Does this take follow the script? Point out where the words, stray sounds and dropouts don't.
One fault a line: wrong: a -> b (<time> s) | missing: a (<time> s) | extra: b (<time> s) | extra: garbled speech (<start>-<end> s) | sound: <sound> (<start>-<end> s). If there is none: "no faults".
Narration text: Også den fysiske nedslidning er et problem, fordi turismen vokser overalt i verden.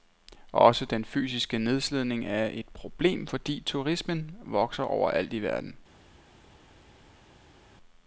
no faults